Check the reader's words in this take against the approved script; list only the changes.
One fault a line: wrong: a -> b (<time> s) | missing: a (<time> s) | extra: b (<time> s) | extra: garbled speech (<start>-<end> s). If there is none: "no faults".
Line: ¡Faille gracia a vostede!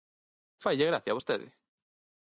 no faults